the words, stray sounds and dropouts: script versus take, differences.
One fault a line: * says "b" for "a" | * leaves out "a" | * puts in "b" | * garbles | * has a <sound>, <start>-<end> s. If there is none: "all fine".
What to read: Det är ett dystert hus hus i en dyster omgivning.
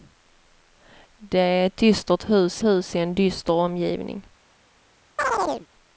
* has a chirp, 5.2-5.7 s